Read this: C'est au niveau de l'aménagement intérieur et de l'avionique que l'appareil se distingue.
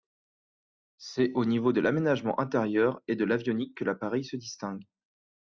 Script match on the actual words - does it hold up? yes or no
yes